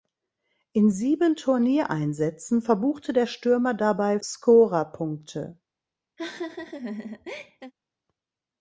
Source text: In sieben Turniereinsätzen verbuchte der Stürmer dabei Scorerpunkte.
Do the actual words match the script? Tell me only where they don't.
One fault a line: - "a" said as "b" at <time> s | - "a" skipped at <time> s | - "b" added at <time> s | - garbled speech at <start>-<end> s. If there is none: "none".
none